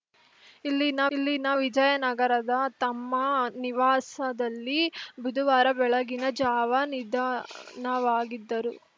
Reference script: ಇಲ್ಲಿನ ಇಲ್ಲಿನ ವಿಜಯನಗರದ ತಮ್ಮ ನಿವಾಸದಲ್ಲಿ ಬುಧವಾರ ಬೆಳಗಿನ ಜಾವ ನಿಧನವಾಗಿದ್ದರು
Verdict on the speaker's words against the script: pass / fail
pass